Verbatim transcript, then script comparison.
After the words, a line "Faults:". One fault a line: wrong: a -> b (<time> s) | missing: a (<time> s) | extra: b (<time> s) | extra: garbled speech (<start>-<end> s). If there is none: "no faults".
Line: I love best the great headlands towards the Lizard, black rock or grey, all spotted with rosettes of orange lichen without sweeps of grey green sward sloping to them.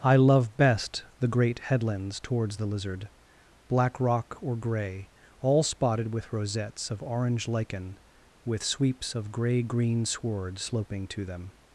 I love best the great headlands towards the Lizard, black rock or grey, all spotted with rosettes of orange lichen with sweeps of grey green sward sloping to them.
Faults:
wrong: without -> with (8.5 s)